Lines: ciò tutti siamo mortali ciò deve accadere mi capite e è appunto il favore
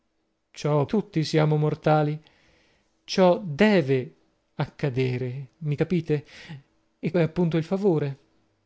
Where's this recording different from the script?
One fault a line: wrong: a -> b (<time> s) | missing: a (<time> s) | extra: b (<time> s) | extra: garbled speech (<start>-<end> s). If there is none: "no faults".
no faults